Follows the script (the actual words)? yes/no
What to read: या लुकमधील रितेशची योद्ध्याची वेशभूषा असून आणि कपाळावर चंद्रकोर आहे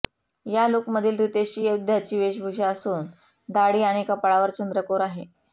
no